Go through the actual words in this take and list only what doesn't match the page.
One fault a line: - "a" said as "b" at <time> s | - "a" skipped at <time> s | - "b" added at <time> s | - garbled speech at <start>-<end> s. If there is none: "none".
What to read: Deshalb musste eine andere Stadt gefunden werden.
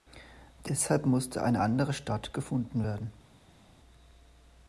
none